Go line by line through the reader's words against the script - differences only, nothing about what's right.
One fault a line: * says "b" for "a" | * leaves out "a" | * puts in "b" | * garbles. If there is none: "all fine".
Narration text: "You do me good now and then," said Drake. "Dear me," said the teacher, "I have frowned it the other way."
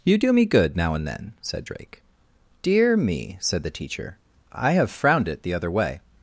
all fine